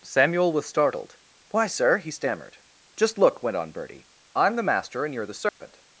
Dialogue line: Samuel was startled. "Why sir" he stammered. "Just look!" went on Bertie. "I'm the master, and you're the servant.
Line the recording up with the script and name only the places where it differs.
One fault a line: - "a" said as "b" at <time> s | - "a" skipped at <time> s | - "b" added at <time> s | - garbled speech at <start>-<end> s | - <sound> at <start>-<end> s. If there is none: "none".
- dropout at 5.5-5.6 s